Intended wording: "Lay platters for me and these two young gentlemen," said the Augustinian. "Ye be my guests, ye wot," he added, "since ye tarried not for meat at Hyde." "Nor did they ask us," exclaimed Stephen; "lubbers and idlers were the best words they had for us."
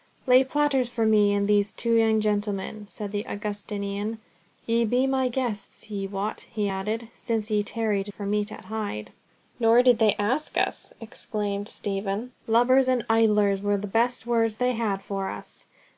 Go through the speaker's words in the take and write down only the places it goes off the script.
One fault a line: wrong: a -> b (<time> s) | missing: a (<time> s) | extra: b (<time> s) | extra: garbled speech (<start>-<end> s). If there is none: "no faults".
missing: not (8.1 s)